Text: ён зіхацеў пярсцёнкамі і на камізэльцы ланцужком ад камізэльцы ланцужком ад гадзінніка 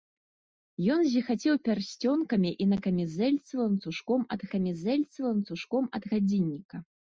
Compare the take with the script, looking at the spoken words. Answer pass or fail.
pass